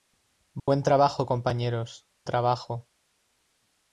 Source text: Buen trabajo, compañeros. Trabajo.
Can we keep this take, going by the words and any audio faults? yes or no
no